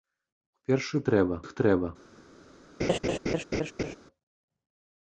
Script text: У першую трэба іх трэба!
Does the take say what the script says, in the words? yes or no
yes